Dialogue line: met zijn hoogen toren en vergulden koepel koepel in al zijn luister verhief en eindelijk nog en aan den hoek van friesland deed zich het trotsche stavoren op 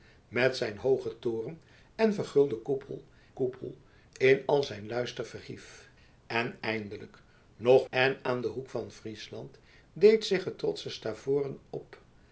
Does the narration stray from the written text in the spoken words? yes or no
no